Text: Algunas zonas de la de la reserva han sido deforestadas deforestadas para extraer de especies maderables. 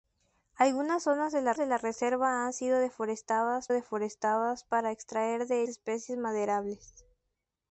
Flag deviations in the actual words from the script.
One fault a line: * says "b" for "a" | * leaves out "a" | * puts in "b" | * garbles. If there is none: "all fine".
all fine